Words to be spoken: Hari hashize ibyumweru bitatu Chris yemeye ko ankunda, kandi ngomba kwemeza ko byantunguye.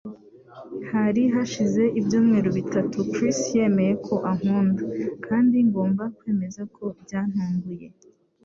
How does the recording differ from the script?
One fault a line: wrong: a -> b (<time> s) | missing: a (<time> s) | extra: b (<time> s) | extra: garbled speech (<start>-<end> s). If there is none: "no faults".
no faults